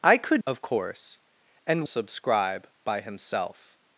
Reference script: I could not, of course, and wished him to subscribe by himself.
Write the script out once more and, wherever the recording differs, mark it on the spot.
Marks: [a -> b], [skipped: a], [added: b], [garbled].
I could [skipped: not,] of course, and [skipped: wished him to] subscribe by himself.